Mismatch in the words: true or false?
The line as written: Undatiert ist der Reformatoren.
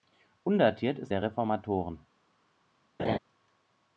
false